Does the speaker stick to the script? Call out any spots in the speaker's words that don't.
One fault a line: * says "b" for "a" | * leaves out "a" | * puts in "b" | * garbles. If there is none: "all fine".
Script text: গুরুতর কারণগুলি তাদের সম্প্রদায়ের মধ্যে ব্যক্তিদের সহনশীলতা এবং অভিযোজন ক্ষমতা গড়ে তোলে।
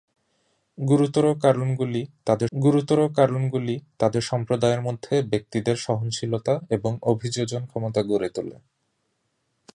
* puts in "গুরুতর কারণগুলি তাদের"